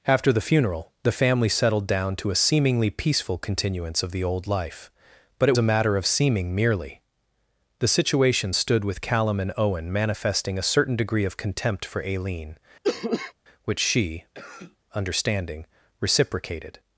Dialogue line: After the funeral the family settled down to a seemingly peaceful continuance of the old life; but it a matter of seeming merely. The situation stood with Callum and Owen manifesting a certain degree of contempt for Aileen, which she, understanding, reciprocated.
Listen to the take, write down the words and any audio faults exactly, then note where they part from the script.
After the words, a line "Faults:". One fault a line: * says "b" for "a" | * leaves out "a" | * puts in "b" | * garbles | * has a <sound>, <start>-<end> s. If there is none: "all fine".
After the funeral the family settled down to a seemingly peaceful continuance of the old life; but it a matter of seeming merely. The situation stood with Callum and Owen manifesting a certain degree of contempt for Aileen, which she, understanding, reciprocated.
Faults:
* has a cough, 12.8-13.3 s
* has a cough, 14.3-14.8 s